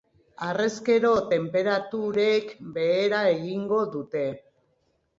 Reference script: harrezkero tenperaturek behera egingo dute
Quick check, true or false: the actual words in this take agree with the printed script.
true